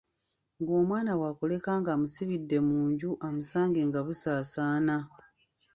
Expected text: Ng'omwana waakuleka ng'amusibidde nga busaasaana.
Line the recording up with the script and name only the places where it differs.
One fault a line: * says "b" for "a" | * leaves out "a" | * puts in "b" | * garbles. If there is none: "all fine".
* puts in "mu nju amusange"